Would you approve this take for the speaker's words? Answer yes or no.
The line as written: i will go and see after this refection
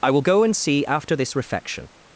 yes